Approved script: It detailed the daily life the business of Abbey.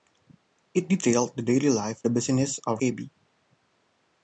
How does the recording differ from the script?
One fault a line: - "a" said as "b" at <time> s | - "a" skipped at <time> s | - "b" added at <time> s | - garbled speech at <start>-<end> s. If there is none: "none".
none